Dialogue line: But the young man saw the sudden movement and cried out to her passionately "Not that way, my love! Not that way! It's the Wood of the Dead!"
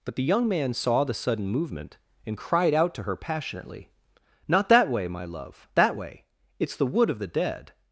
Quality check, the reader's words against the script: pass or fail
fail